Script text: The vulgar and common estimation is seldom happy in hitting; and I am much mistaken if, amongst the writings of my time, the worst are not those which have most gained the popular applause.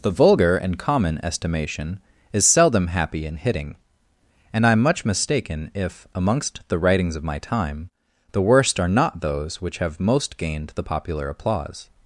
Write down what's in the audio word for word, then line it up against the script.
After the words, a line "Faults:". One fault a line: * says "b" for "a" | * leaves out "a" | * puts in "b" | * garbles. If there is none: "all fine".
The vulgar and common estimation is seldom happy in hitting; and I am much mistaken if, amongst the writings of my time, the worst are not those which have most gained the popular applause.
Faults:
all fine